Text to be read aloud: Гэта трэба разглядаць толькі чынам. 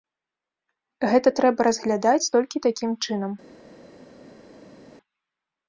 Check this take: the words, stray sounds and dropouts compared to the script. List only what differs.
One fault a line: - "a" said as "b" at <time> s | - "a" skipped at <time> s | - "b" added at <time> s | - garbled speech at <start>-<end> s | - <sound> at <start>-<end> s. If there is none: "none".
- "такім" added at 2.7 s